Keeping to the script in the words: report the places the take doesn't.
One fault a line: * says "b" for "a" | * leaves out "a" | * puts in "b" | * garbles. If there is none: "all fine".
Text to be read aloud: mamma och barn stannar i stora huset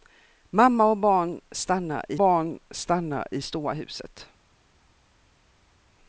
* puts in "barn stannar i"